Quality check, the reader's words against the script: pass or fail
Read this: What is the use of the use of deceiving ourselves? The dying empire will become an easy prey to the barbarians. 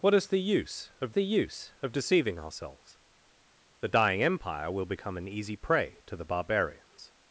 pass